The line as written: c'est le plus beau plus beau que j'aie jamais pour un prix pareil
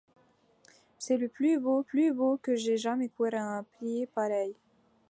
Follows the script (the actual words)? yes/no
yes